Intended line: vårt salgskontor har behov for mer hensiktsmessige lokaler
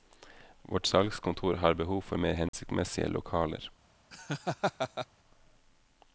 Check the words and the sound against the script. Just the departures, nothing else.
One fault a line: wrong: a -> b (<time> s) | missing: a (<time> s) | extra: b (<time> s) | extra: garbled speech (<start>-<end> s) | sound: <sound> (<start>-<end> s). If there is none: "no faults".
sound: dropout (2.5-2.5 s)
sound: laugh (4.1-5.1 s)